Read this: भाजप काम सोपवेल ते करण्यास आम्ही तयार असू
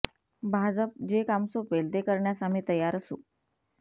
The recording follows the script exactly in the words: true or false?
false